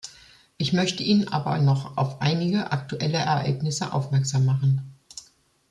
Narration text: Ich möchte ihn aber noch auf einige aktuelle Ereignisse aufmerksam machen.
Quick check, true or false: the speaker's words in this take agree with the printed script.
true